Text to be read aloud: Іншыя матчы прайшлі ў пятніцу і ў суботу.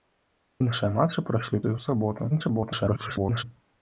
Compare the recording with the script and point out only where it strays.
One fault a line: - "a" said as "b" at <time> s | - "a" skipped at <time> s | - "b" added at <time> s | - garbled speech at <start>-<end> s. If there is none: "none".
- "пятніцу" skipped at 1.6 s
- garbled speech at 2.3-3.4 s